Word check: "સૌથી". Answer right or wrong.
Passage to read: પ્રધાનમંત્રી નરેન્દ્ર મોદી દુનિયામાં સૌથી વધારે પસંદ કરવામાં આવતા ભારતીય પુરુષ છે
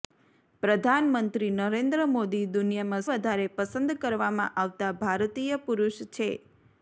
wrong